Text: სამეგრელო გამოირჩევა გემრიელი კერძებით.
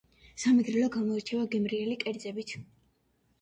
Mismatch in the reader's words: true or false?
false